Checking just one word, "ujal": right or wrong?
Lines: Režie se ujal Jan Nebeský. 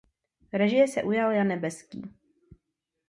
right